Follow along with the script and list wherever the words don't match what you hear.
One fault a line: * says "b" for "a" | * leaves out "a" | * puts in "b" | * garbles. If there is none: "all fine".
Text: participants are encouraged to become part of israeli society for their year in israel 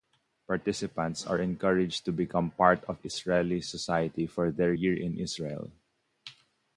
all fine